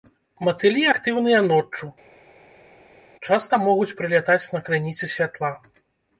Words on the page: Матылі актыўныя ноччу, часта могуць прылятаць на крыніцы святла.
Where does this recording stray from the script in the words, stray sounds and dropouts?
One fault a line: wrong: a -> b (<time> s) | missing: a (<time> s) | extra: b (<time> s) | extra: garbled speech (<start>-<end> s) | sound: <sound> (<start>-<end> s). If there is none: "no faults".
no faults